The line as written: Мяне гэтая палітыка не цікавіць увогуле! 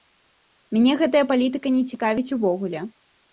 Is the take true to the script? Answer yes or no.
yes